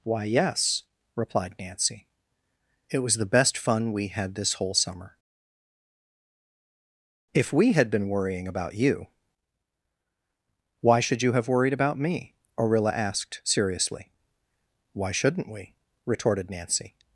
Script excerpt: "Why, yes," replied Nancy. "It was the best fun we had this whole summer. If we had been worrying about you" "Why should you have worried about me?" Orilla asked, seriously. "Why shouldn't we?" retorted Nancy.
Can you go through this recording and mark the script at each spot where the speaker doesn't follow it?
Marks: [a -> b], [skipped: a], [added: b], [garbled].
"Why, yes," replied Nancy. "It was the best fun we had this whole summer. If we had been worrying about you" "Why should you have worried about me?" Orilla asked, seriously. "Why shouldn't we?" retorted Nancy.